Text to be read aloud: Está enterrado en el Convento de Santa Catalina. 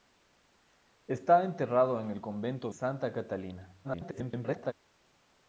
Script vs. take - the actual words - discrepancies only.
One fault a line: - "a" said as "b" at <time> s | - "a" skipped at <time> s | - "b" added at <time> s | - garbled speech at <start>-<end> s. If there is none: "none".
- "de" skipped at 2.7 s
- garbled speech at 3.8-4.7 s